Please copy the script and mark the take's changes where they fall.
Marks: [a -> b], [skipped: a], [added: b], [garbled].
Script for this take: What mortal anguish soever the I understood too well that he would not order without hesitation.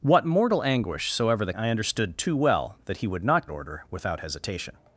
What mortal anguish soever the I understood too well that he would not order without hesitation.